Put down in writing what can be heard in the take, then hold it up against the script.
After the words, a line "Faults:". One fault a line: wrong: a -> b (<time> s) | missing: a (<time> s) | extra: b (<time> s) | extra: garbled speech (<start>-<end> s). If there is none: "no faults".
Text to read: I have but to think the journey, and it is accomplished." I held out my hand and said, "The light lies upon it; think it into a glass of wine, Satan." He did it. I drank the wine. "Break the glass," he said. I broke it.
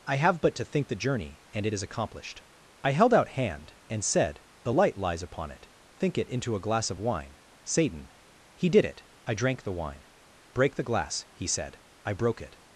I have but to think the journey, and it is accomplished." I held out hand and said, "The light lies upon it; think it into a glass of wine, Satan." He did it. I drank the wine. "Break the glass," he said. I broke it.
Faults:
missing: my (3.3 s)